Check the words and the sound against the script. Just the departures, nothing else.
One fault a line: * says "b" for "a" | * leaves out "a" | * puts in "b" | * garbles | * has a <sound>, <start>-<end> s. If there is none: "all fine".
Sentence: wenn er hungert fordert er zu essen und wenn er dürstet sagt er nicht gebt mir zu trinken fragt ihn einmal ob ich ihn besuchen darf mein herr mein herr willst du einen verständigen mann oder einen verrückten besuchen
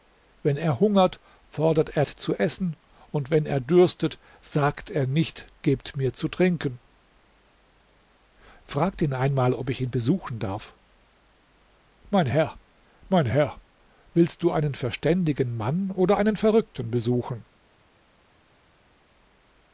all fine